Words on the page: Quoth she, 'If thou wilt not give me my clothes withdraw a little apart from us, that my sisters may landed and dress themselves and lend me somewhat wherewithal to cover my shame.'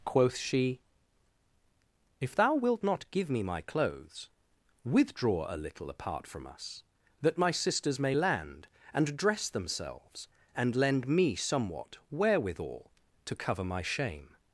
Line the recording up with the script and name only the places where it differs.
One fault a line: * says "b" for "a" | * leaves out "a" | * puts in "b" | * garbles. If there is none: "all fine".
* says "land" for "landed"